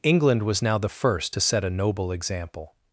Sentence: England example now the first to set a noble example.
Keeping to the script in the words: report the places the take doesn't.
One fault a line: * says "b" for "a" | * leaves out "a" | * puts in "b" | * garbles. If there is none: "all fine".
* says "was" for "example"